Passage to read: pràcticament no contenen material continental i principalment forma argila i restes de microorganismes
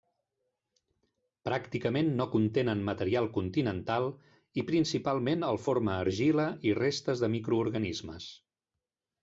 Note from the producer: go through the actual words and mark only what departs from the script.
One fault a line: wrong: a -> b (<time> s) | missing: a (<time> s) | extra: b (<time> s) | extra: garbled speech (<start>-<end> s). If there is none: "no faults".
extra: el (5.5 s)